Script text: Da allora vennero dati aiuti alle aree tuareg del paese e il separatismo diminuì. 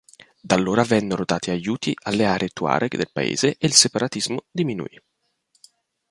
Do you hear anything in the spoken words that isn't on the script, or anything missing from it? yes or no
no